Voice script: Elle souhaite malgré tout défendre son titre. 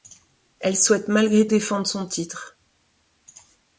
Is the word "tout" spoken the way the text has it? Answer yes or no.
no